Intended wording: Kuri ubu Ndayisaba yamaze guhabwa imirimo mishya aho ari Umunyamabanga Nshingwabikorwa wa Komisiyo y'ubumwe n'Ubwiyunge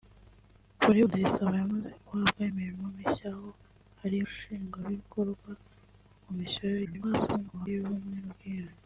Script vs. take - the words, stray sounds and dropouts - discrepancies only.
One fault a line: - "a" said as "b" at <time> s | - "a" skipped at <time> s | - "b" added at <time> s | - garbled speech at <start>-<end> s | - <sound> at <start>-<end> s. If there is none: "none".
- "ubu" skipped at 1.0 s
- "Umunyamabanga" skipped at 4.2 s
- garbled speech at 6.8-7.7 s